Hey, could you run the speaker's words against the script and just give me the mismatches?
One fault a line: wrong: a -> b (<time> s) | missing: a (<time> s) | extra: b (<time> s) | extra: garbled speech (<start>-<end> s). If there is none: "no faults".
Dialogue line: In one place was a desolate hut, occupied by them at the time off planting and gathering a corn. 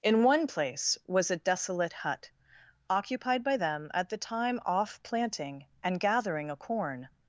no faults